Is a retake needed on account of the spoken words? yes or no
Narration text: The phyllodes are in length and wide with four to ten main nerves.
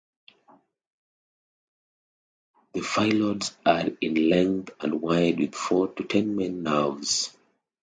no